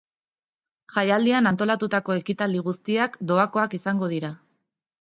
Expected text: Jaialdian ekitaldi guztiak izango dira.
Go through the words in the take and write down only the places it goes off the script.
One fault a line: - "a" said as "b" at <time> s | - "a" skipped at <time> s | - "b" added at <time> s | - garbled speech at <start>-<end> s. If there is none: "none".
- "antolatutako" added at 1.5 s
- "doakoak" added at 3.3 s